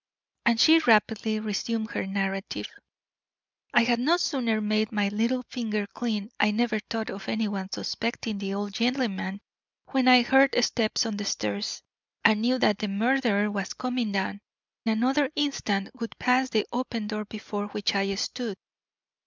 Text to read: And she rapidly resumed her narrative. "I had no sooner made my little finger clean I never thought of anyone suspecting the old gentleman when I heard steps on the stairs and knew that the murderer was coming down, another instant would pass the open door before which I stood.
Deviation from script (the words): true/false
false